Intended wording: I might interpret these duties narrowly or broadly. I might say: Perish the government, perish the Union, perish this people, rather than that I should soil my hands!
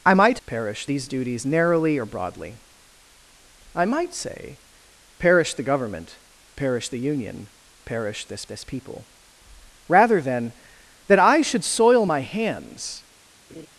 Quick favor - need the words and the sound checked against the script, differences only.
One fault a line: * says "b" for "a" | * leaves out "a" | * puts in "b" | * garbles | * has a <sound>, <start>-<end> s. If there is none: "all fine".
* says "perish" for "interpret"
* puts in "this"
* has a laugh, 13.5-13.7 s